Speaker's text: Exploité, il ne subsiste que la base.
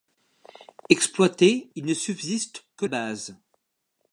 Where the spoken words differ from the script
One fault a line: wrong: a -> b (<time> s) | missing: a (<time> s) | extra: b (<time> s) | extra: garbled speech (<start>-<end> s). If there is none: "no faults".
missing: la (2.9 s)